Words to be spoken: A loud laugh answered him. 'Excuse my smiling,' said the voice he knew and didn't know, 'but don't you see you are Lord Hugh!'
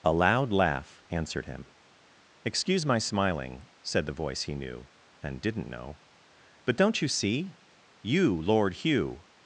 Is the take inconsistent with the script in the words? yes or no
yes